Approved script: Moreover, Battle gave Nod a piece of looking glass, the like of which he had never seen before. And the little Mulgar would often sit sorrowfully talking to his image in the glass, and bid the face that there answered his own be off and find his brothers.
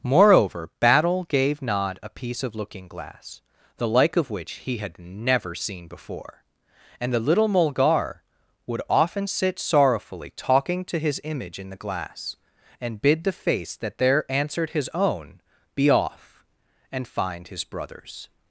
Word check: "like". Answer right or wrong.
right